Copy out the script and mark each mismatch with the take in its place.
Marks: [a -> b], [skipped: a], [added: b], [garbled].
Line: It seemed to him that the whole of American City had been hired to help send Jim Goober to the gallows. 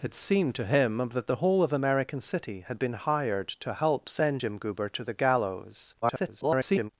It seemed to him that the whole of American City had been hired to help send Jim Goober to the gallows. [garbled]